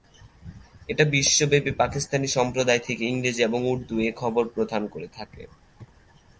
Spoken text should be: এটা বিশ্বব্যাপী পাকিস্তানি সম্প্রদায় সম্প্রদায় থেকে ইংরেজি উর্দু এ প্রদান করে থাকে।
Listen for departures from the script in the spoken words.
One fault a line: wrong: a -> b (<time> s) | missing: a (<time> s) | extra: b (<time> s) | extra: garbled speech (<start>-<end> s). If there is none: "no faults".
missing: সম্প্রদায় (2.8 s)
extra: এবং (3.4 s)
extra: খবর (4.2 s)